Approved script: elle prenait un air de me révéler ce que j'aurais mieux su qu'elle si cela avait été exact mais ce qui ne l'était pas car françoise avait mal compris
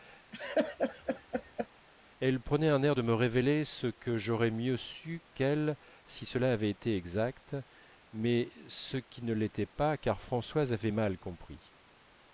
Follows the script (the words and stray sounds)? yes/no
no